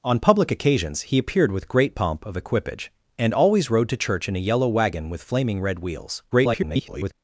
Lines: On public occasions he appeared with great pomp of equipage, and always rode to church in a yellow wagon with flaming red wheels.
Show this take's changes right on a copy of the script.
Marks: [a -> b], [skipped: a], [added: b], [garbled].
On public occasions he appeared with great pomp of equipage, and always rode to church in a yellow wagon with flaming red wheels. [garbled]